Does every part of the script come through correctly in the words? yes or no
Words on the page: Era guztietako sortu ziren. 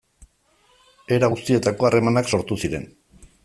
no